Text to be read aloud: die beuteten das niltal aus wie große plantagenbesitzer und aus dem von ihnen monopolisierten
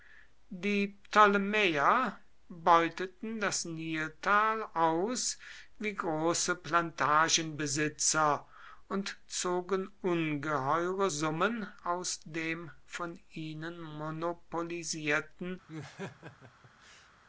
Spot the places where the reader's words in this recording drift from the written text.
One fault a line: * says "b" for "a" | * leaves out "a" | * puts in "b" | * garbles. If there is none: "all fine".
* puts in "ptolemäer"
* puts in "zogen ungeheure summen"